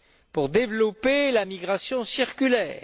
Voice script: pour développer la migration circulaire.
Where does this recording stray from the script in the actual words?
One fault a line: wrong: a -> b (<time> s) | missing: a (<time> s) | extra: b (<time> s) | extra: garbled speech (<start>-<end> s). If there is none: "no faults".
no faults